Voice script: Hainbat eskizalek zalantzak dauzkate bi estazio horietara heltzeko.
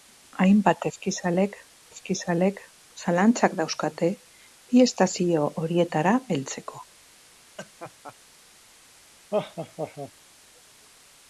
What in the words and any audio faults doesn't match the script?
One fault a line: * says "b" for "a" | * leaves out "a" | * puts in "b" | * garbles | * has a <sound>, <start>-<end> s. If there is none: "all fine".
* puts in "eskizalek"
* has a laugh, 7.6-8.2 s
* has a laugh, 9.3-10.1 s